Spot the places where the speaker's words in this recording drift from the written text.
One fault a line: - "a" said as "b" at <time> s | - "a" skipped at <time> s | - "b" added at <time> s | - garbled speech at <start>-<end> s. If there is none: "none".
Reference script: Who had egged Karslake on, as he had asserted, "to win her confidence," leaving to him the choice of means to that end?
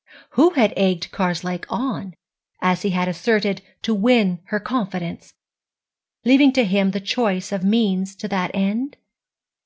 none